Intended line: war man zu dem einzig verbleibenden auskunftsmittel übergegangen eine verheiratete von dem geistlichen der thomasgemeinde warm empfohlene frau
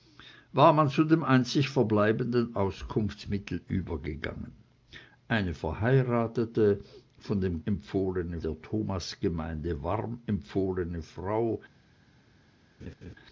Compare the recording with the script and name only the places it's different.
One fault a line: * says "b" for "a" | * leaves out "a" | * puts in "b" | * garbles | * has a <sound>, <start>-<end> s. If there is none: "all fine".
* says "empfohlene" for "geistlichen"
* has a laugh, 12.8-13.1 s